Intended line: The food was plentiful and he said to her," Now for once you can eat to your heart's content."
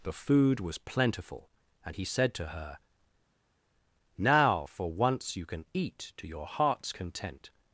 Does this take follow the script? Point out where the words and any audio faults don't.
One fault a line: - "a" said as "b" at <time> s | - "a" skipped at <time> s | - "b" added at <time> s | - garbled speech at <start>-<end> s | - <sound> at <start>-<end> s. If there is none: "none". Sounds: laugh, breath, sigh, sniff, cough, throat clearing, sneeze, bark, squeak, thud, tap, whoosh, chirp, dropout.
none